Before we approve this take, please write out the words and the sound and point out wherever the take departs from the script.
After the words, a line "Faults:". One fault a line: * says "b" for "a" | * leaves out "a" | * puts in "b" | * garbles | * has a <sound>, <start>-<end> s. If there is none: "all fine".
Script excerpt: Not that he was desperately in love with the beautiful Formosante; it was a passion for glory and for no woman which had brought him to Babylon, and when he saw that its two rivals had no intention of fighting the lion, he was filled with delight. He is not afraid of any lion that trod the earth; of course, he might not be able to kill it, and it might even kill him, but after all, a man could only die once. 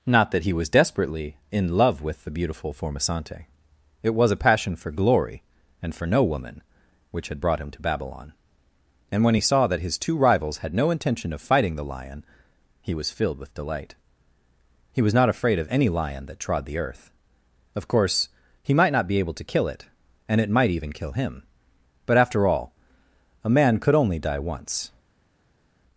Not that he was desperately in love with the beautiful Formosante; it was a passion for glory and for no woman which had brought him to Babylon, and when he saw that his two rivals had no intention of fighting the lion, he was filled with delight. He was not afraid of any lion that trod the earth; of course, he might not be able to kill it, and it might even kill him, but after all, a man could only die once.
Faults:
* says "his" for "its"
* says "was" for "is"